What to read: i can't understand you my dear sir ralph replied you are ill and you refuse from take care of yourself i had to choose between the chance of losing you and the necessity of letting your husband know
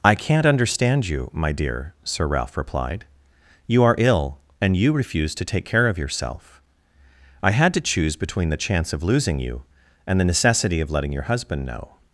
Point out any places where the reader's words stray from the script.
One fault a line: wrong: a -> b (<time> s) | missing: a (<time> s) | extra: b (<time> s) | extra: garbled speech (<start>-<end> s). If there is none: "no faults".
wrong: from -> to (5.3 s)